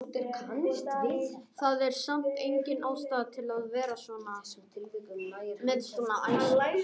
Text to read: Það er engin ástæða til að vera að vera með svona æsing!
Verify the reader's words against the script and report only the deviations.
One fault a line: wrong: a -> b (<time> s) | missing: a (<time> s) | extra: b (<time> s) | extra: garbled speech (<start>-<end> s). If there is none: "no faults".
extra: samt (2.0 s)
missing: að vera (4.0 s)